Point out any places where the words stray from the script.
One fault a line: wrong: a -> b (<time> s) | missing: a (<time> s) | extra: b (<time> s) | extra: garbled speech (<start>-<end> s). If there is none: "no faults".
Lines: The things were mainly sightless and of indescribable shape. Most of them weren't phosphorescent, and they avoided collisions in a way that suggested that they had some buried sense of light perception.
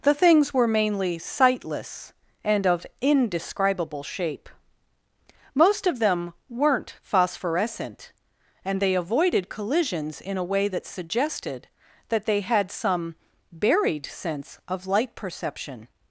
no faults